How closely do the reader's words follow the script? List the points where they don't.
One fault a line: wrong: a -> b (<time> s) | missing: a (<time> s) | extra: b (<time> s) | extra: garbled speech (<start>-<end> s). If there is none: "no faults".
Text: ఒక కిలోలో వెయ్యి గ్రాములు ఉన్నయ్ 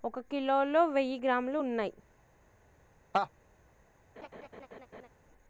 no faults